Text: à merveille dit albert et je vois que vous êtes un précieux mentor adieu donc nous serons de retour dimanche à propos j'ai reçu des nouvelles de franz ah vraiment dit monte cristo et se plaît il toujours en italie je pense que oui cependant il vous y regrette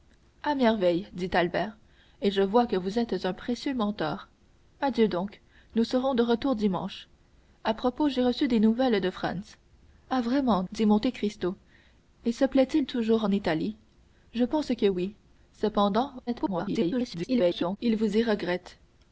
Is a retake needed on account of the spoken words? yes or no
yes